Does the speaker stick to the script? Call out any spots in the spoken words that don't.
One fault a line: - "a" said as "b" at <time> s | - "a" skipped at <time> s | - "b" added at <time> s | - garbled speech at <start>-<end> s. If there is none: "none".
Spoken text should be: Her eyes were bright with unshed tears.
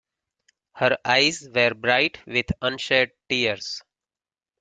none